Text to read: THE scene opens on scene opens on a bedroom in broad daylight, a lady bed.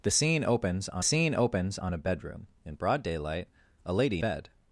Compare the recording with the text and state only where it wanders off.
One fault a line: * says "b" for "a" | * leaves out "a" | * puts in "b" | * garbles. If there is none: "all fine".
all fine